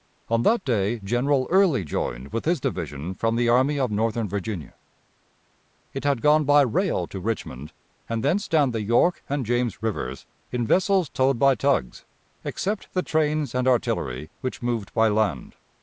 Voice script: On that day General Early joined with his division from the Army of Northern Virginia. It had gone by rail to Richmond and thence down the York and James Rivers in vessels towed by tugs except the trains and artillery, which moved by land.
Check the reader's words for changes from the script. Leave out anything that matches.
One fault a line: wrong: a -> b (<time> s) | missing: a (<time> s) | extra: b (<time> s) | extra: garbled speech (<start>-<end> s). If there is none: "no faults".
no faults